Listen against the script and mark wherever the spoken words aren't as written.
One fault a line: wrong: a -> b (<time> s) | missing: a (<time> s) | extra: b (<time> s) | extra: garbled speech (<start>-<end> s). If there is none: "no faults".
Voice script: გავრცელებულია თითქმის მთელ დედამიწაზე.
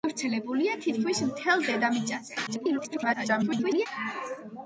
extra: garbled speech (2.5-3.9 s)